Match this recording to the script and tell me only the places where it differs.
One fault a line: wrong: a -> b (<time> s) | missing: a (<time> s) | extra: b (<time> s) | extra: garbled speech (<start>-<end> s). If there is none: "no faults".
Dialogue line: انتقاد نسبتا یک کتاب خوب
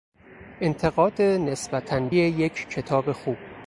no faults